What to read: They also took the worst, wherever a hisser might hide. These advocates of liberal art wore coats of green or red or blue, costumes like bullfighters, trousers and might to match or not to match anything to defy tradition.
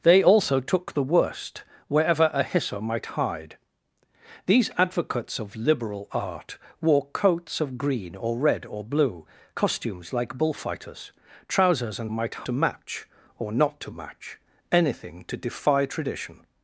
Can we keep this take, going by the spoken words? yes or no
yes